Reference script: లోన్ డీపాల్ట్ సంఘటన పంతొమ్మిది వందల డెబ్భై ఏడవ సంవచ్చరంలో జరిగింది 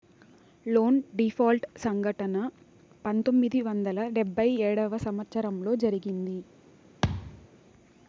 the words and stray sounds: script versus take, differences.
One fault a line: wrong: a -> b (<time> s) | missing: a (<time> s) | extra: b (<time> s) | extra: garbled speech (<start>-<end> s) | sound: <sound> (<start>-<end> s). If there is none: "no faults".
sound: thud (7.0-7.5 s)